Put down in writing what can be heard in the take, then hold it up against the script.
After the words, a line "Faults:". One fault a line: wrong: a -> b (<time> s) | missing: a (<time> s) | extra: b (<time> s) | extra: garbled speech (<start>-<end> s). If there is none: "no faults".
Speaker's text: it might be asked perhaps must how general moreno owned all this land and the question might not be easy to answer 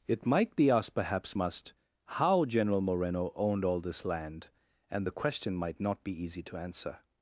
it might be asked perhaps must how general moreno owned all this land and the question might not be easy to answer
Faults:
no faults